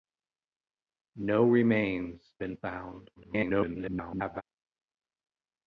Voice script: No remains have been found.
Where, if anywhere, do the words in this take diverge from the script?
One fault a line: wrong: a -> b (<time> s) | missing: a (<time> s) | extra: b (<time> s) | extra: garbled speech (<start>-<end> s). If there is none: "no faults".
missing: have (2.2 s)
extra: garbled speech (3.2-4.4 s)